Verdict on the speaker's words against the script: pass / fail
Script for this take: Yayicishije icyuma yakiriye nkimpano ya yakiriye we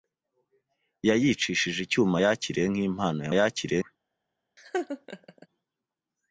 pass